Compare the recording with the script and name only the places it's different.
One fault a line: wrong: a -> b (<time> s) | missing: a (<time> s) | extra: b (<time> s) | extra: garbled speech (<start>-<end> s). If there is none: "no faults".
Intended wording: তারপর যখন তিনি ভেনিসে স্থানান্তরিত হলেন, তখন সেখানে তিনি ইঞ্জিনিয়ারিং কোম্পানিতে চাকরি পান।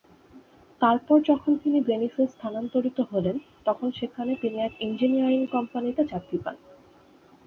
extra: এক (4.6 s)